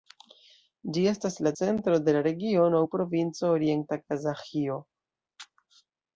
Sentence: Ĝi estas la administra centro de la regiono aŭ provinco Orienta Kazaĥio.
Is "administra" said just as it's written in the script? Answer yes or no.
no